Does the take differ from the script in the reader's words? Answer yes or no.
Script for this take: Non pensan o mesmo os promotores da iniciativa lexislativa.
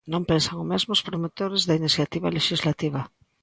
no